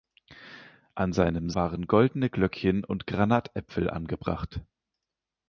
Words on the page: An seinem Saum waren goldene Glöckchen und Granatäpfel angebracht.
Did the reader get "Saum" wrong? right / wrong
wrong